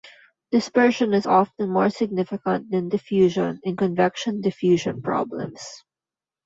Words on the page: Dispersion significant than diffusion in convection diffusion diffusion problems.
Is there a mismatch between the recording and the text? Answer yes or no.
yes